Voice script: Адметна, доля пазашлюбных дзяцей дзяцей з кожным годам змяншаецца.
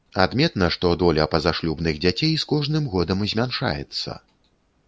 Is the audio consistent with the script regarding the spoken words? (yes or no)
no